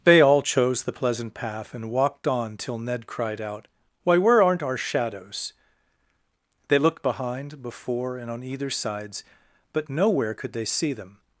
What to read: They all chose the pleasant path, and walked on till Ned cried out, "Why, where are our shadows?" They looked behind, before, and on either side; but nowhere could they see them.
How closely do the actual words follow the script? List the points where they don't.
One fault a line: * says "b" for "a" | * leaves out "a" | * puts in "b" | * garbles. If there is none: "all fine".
* says "aren't" for "are"
* says "sides" for "side"